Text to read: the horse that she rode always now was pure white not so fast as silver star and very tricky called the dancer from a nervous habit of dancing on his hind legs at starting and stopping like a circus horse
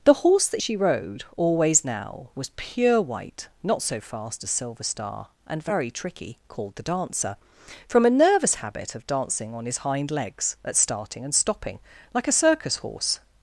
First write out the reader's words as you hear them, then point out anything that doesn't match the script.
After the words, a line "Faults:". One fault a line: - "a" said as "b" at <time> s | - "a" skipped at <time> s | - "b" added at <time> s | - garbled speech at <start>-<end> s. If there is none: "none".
the horse that she rode always now was pure white not so fast as silver star and very tricky called the dancer from a nervous habit of dancing on his hind legs at starting and stopping like a circus horse
Faults:
none